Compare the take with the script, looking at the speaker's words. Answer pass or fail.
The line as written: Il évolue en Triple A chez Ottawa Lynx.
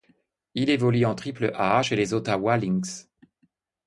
fail